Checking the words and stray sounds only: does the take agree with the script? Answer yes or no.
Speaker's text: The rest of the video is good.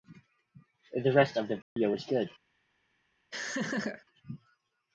no